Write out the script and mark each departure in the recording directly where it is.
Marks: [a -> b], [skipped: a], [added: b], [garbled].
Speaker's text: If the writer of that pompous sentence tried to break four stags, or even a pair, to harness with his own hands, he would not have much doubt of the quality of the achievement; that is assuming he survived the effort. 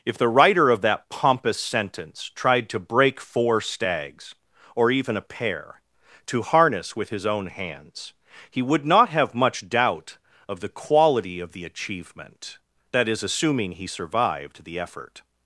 If the writer of that pompous sentence tried to break four stags, or even a pair, to harness with his own hands, he would not have much doubt of the quality of the achievement; that is assuming he survived the effort.